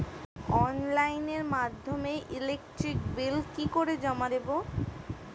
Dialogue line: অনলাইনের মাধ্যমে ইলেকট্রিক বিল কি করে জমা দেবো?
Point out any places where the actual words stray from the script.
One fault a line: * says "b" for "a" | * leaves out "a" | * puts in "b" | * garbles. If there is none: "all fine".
all fine